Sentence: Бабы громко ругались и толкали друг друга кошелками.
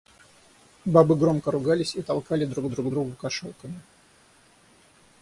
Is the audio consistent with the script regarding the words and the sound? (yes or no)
no